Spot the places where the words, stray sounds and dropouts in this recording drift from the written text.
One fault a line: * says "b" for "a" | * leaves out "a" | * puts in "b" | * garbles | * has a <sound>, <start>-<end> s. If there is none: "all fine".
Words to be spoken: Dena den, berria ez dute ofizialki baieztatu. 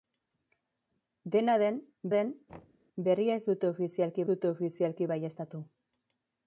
* puts in "den"
* has a thud, 2.5-2.9 s
* puts in "dute ofizialki"